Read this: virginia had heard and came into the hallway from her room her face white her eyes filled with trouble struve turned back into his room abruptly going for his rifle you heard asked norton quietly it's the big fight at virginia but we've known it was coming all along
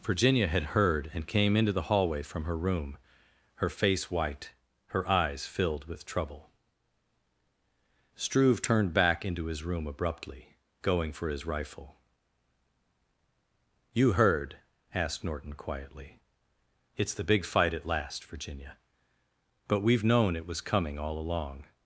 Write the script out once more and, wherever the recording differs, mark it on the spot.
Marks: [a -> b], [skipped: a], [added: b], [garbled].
virginia had heard and came into the hallway from her room her face white her eyes filled with trouble struve turned back into his room abruptly going for his rifle you heard asked norton quietly it's the big fight at [added: last] virginia but we've known it was coming all along